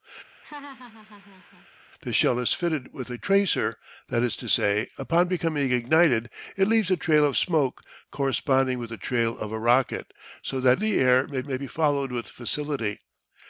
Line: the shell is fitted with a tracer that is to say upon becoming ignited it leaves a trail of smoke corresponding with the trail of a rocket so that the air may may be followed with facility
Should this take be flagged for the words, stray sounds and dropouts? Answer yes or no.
yes